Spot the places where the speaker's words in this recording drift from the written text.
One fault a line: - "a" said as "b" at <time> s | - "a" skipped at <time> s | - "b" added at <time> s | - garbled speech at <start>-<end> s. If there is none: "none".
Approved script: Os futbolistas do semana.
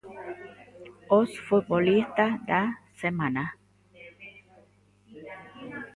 - "do" said as "da" at 2.5 s